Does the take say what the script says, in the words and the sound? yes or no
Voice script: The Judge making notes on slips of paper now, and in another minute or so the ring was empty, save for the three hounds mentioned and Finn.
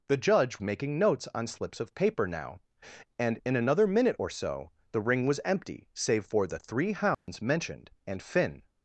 no